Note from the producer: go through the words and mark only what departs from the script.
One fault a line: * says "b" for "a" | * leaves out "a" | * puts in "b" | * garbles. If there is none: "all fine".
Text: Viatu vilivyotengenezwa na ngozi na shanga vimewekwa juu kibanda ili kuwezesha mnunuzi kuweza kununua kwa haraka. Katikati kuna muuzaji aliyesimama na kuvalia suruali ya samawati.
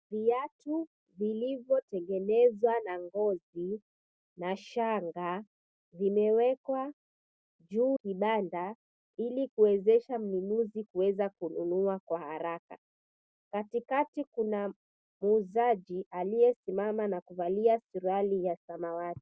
all fine